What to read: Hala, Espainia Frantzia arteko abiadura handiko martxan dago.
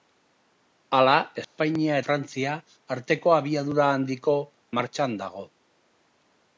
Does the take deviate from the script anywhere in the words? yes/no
no